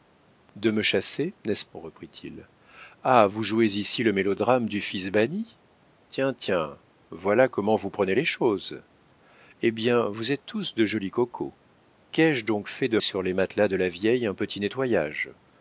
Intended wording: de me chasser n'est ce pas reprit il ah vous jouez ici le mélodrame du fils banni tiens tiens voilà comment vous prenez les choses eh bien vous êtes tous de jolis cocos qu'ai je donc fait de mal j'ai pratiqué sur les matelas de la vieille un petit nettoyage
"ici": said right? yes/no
yes